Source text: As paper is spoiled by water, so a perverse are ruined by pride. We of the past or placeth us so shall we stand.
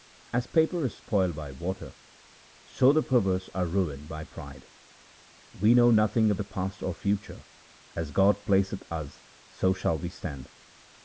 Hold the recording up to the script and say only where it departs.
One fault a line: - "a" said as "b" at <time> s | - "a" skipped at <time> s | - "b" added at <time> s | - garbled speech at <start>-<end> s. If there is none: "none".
- "a" said as "the" at 2.9 s
- "know nothing" added at 5.8 s
- "future as God" added at 6.9 s